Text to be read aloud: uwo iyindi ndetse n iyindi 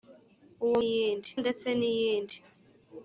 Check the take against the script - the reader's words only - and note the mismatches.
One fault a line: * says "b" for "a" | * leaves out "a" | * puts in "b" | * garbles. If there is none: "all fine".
all fine